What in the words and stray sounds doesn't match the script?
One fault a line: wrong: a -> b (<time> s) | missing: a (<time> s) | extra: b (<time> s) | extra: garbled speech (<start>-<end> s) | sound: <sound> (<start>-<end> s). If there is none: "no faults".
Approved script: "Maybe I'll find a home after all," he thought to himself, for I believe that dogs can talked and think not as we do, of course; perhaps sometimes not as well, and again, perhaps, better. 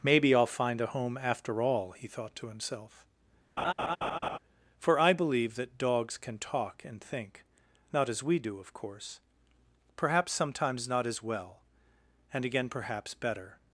sound: laugh (3.6-4.4 s)
wrong: talked -> talk (6.4 s)